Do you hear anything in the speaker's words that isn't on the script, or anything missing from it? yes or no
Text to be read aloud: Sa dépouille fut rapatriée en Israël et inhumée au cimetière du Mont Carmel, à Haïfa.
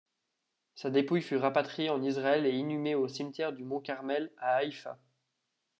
no